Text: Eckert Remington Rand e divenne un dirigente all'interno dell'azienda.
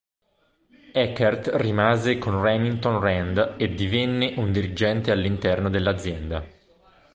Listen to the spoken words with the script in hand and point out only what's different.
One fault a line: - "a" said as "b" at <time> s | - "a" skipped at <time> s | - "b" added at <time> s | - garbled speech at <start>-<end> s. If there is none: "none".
- "rimase con" added at 1.6 s